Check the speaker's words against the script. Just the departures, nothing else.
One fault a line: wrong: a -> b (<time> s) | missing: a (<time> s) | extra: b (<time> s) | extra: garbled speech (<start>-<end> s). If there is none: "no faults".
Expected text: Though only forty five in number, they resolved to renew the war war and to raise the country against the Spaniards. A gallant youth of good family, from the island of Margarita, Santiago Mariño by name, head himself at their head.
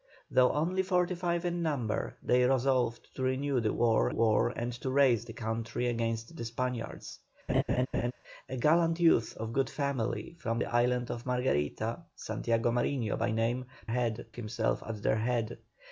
no faults